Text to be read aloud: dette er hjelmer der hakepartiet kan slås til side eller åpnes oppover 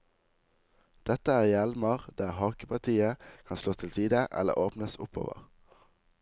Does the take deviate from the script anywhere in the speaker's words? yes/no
no